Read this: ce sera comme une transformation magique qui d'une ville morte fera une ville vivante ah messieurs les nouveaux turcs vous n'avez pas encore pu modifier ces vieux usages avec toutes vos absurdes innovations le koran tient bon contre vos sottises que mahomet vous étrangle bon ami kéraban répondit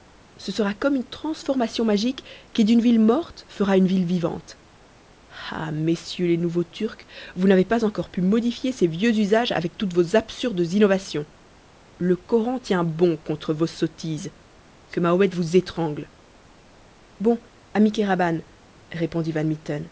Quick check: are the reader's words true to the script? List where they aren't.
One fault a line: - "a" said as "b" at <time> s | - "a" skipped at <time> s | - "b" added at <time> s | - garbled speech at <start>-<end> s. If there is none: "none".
none